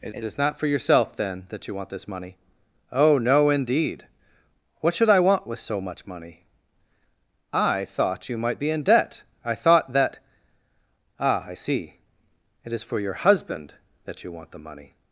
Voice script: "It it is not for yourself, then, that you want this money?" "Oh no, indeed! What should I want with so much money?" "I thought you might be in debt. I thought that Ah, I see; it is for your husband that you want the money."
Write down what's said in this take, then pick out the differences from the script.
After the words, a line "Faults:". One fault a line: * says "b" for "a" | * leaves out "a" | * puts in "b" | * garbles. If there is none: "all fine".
"It it is not for yourself, then, that you want this money?" "Oh no, indeed! What should I want with so much money?" "I thought you might be in debt. I thought that Ah, I see; it is for your husband that you want the money."
Faults:
all fine